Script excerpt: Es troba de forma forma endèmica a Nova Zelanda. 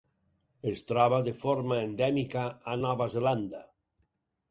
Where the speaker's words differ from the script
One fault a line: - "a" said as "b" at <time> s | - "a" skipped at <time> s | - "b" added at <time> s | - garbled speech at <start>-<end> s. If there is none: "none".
- "forma" skipped at 1.8 s